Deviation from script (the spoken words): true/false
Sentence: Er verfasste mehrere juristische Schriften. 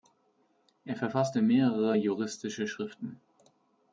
false